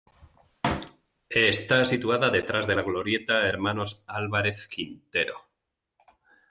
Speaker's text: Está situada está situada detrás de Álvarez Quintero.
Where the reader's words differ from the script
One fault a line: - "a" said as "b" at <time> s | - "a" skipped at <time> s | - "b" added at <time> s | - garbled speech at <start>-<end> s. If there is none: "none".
- "está situada detrás de" said as "detrás de la Glorieta Hermanos" at 2.3 s